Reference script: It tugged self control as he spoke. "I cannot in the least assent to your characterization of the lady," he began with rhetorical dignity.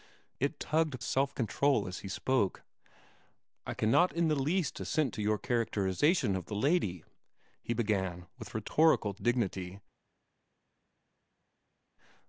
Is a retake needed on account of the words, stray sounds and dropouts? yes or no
no